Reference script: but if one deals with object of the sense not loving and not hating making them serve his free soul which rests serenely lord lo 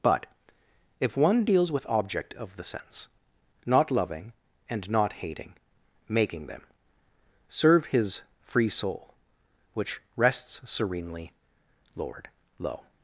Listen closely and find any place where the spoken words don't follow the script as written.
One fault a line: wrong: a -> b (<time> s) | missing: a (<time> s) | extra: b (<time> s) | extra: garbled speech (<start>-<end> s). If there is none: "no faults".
no faults